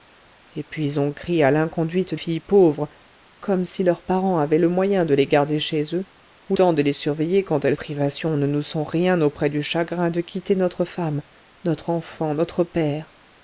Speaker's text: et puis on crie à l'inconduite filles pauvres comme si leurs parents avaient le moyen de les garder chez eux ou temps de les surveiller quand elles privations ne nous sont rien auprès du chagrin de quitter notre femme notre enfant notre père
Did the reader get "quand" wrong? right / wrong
right